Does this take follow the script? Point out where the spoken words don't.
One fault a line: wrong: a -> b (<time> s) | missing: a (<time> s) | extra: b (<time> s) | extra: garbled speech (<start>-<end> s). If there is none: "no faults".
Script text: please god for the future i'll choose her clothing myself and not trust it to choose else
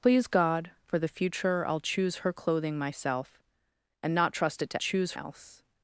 no faults